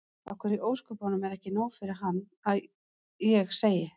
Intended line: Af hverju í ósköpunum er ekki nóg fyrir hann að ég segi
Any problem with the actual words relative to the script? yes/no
no